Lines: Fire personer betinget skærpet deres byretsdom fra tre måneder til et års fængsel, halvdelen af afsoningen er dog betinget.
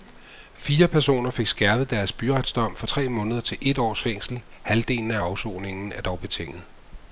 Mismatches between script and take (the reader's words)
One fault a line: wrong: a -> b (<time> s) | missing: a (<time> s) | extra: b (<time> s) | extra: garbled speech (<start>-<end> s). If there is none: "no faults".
wrong: betinget -> fik (1.3 s)